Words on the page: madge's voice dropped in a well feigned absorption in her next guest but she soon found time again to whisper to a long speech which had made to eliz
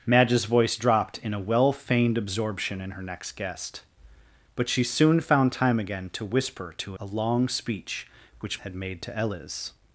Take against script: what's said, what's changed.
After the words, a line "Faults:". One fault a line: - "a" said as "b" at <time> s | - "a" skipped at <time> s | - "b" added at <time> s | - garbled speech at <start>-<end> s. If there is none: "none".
madge's voice dropped in a well feigned absorption in her next guest but she soon found time again to whisper to a long speech which had made to eliz
Faults:
none